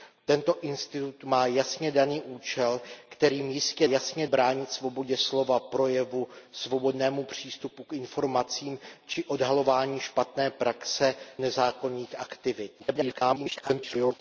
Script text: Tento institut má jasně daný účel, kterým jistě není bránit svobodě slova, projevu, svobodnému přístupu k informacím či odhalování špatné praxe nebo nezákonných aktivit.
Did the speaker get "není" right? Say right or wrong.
wrong